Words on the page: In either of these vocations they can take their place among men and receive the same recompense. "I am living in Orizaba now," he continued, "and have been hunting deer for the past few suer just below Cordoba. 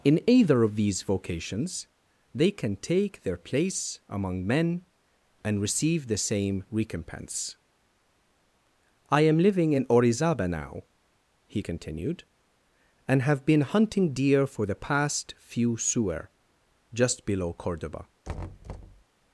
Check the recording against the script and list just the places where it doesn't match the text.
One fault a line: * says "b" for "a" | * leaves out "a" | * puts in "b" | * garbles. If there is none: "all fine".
all fine